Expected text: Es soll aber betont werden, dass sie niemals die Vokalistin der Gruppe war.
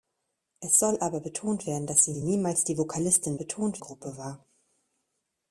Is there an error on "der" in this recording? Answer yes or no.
yes